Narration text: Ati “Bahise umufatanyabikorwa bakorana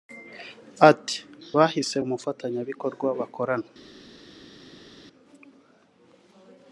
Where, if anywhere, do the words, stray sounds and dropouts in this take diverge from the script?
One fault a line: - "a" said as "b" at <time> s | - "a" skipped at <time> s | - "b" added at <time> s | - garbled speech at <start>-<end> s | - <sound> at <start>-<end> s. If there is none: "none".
none